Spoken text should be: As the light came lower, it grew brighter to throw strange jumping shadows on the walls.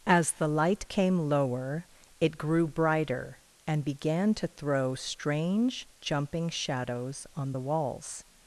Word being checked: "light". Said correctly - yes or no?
yes